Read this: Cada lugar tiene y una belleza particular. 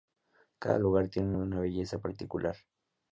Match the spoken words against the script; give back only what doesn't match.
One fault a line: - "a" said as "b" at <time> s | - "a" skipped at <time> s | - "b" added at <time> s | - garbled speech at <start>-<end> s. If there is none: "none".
none